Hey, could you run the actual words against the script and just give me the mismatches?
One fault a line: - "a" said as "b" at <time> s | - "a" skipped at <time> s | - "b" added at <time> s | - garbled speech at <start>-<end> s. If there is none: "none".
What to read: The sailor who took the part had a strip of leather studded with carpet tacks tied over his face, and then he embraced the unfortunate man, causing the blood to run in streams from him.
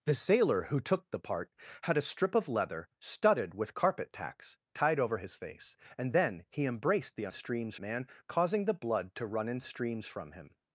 - "unfortunate" said as "streams" at 7.3 s